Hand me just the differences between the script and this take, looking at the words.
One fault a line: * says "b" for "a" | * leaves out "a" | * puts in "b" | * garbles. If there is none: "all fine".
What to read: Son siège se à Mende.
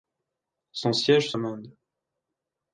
all fine